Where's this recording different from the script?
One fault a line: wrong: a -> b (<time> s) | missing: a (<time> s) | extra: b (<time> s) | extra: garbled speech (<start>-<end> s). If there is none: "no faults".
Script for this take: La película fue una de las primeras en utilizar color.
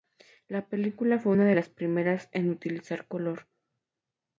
no faults